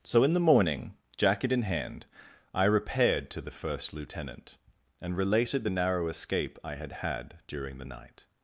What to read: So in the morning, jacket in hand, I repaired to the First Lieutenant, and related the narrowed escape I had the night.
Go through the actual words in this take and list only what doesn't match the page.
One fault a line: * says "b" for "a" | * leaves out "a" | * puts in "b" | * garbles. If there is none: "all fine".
* says "narrow" for "narrowed"
* puts in "had during"